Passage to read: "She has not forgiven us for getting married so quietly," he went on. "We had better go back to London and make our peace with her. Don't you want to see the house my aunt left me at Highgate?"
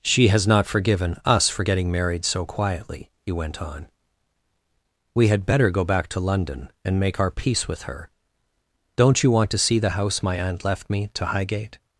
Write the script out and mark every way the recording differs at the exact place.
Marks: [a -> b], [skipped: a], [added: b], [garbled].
"She has not forgiven us for getting married so quietly," he went on. "We had better go back to London and make our peace with her. Don't you want to see the house my aunt left me [at -> to] Highgate?"